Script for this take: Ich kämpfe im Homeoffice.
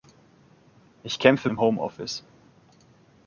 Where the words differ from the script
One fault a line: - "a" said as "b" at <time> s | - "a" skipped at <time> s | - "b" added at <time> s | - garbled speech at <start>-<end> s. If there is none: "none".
none